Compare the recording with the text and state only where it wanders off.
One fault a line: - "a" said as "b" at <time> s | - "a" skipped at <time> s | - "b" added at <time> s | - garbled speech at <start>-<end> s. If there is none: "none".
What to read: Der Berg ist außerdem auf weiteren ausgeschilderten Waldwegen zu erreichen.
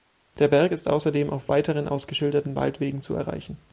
none